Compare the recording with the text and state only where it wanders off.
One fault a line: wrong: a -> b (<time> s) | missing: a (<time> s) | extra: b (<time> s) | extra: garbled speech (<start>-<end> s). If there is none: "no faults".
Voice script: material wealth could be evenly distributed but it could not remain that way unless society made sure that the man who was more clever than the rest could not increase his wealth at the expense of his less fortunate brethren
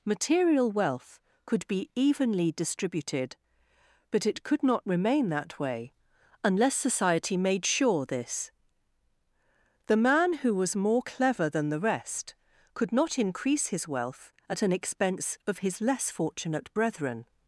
wrong: that -> this (8.1 s)
wrong: the -> an (14.6 s)